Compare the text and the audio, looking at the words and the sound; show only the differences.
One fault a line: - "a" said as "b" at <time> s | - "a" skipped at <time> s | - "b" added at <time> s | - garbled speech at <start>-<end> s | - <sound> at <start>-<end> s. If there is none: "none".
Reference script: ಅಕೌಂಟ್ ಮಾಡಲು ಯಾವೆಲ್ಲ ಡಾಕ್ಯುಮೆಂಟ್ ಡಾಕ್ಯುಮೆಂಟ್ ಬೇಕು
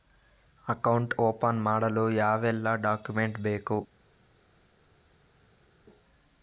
- "ಓಪನ್" added at 1.2 s
- "ಡಾಕ್ಯುಮೆಂಟ್" skipped at 3.4 s